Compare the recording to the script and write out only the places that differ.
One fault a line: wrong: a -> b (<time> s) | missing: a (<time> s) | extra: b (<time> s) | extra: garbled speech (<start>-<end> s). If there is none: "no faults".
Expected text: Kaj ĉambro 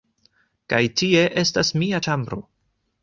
extra: tie estas mia (1.0 s)